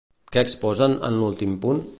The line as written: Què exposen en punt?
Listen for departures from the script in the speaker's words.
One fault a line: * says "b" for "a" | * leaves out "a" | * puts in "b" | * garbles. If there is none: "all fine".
* puts in "l'últim"